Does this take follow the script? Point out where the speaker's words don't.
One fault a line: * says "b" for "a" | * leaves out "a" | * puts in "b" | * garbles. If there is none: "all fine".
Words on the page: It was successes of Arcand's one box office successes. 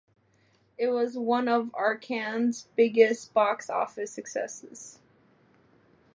* says "one" for "successes"
* says "biggest" for "one"